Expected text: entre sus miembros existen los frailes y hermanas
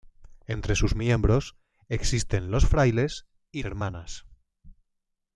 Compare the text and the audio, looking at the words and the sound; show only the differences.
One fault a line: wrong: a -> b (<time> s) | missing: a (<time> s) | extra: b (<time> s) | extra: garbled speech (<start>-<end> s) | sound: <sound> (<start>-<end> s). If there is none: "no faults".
no faults